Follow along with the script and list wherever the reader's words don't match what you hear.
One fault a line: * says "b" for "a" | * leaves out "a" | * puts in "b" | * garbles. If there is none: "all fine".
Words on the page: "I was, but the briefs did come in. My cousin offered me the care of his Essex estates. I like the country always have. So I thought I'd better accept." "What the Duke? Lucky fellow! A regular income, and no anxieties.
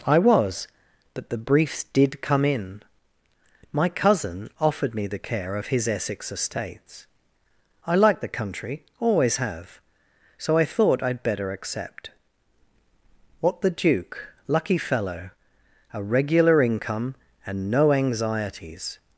all fine